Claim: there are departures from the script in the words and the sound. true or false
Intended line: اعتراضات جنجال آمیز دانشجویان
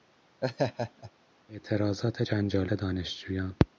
true